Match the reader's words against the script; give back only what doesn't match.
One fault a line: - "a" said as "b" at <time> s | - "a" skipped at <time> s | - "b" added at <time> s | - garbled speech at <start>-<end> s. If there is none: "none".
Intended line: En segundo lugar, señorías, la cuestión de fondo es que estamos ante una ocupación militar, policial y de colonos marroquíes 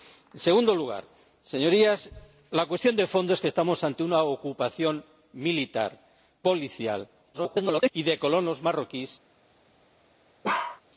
- garbled speech at 7.3-7.9 s